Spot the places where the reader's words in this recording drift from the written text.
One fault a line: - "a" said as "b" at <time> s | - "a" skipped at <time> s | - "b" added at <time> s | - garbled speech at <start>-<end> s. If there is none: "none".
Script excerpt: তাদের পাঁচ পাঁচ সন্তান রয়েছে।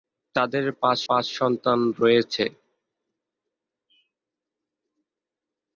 none